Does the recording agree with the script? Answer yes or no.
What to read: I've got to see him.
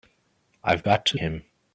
no